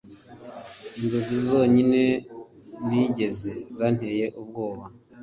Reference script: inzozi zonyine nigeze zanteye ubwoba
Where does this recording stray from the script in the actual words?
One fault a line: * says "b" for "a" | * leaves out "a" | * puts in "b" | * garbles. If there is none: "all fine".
all fine